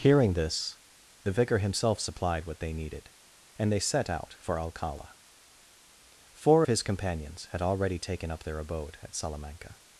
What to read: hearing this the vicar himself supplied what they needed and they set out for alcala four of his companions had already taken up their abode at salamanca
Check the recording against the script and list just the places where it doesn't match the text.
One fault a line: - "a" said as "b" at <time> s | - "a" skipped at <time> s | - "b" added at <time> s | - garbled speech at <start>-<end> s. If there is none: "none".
none